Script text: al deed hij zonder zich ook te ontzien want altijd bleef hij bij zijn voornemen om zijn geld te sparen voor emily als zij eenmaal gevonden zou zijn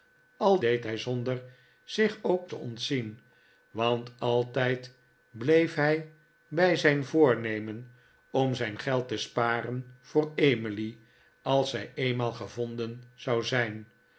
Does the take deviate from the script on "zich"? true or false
false